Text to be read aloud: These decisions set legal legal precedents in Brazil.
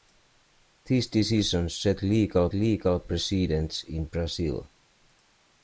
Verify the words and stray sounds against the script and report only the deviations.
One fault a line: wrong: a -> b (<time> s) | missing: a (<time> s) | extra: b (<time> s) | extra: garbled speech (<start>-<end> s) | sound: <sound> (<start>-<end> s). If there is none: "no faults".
no faults